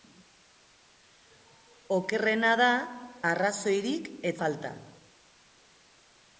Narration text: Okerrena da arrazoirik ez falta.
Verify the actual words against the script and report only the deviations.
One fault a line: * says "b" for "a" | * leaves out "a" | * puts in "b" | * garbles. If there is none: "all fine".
all fine